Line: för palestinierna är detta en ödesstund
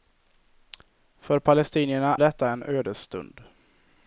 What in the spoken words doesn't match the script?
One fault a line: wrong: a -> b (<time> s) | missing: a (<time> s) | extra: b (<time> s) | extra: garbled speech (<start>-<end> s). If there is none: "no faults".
missing: är (2.1 s)